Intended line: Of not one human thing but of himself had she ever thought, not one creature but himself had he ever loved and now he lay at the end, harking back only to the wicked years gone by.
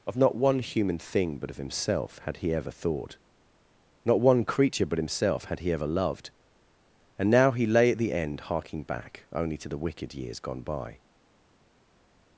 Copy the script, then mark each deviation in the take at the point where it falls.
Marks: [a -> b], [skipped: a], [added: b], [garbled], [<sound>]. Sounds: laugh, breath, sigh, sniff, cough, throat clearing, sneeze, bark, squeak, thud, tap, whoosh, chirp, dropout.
Of not one human thing but of himself had [she -> he] ever thought, not one creature but himself had he ever loved and now he lay at the end, harking back only to the wicked years gone by.